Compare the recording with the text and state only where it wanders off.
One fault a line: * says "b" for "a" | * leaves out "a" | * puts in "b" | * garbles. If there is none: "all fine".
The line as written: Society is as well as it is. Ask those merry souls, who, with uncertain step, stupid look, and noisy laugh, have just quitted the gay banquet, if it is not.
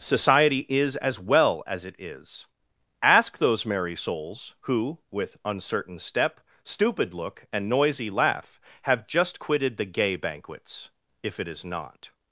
* says "banquets" for "banquet"